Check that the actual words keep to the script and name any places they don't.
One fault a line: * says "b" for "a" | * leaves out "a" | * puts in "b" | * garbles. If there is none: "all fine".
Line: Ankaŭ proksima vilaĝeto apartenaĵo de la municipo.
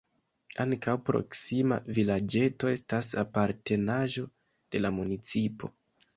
* puts in "estas"